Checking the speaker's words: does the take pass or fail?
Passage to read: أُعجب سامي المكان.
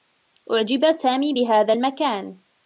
fail